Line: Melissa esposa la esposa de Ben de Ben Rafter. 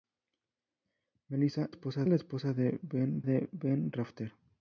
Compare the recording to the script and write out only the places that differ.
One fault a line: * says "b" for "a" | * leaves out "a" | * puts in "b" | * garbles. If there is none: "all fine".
all fine